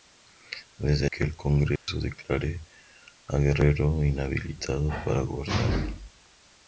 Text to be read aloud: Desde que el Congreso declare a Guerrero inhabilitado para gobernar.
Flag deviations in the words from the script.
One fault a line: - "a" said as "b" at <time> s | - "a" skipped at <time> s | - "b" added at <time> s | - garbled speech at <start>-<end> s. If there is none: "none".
none